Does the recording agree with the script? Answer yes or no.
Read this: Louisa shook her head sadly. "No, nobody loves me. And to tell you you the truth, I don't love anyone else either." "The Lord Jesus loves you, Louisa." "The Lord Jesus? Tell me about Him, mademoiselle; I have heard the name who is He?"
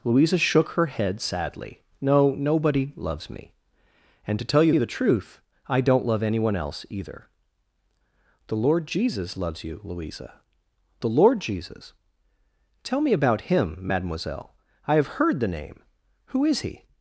yes